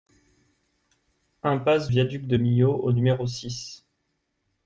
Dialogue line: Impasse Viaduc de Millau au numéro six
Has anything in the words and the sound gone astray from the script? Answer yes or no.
no